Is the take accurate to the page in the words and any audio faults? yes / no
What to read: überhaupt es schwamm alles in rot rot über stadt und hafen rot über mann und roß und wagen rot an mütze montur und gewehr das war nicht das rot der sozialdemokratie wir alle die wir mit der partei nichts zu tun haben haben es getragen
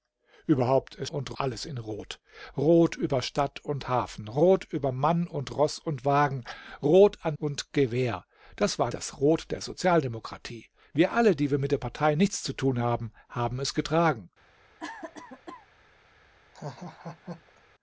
no